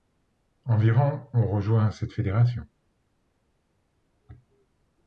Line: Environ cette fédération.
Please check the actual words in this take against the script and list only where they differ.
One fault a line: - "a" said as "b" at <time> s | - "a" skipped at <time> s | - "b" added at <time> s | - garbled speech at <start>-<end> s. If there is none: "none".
- "ont rejoint" added at 1.3 s